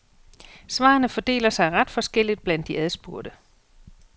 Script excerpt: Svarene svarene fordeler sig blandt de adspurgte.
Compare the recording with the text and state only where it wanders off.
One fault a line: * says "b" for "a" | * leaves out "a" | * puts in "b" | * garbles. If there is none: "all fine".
* leaves out "svarene"
* puts in "ret forskelligt"